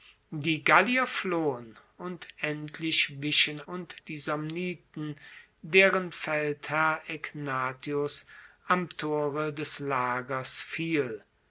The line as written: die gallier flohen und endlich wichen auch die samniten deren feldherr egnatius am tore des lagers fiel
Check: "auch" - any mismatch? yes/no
yes